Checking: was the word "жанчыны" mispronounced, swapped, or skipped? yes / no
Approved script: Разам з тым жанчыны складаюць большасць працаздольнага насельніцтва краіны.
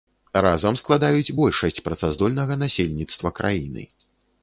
yes